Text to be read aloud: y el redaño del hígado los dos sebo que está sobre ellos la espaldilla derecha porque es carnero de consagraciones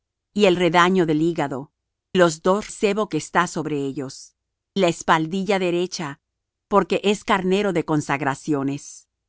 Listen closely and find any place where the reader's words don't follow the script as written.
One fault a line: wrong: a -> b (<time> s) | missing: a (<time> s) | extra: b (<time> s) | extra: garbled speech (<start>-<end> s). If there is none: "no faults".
no faults